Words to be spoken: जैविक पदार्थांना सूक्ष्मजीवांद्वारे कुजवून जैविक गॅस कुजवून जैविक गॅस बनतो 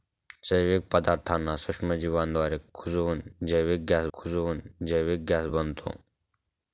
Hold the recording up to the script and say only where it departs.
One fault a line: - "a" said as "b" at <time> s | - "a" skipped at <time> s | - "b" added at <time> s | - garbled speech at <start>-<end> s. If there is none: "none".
none